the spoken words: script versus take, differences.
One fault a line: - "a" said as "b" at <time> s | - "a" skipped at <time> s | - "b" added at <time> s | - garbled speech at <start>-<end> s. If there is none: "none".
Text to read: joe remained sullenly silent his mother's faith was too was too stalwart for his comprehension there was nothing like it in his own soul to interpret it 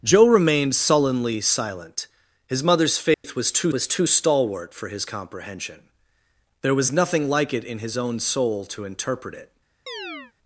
none